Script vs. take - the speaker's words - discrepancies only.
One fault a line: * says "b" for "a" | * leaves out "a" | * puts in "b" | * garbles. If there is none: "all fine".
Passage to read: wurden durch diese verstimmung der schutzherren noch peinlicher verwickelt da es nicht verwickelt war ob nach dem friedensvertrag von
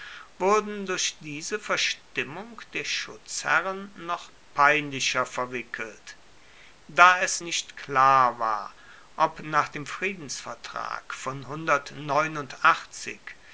* says "klar" for "verwickelt"